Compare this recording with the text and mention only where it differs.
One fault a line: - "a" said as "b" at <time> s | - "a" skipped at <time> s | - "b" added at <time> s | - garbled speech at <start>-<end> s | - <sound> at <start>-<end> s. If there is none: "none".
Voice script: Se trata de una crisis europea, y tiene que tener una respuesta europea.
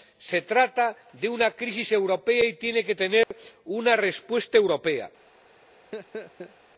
- dropout at 3.2-3.3 s
- laugh at 5.9-6.5 s